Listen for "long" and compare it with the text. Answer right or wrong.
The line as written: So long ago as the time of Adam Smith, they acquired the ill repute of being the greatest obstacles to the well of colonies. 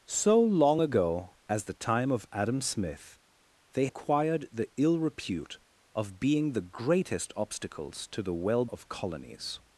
right